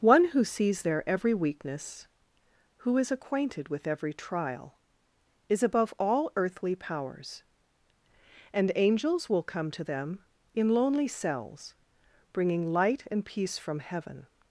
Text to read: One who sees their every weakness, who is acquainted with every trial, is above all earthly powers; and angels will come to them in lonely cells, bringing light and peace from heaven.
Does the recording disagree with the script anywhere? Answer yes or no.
no